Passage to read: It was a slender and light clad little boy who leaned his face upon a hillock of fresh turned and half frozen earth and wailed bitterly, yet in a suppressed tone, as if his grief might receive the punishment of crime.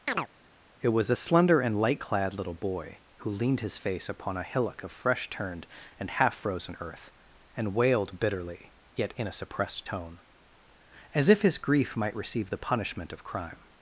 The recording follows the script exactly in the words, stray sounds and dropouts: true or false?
false